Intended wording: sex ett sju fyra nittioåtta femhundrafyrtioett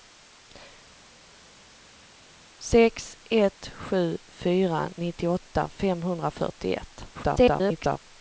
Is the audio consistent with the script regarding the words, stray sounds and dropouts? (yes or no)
no